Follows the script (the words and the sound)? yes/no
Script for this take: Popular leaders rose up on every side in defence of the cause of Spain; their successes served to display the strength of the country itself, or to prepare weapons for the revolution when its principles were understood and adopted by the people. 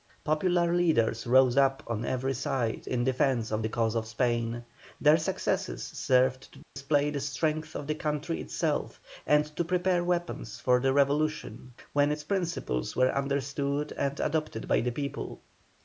no